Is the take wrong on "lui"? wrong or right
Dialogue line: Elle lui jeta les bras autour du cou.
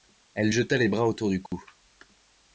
wrong